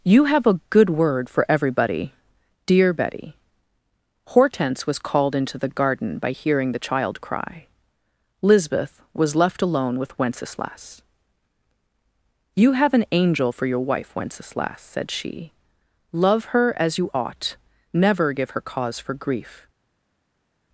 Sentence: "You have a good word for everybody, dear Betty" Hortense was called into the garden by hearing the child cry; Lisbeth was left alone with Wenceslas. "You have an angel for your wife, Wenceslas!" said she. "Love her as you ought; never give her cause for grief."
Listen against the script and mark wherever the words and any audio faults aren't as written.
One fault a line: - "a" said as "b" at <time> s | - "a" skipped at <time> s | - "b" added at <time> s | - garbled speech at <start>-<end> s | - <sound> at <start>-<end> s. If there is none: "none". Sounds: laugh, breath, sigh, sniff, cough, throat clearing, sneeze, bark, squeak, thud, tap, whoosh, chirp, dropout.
none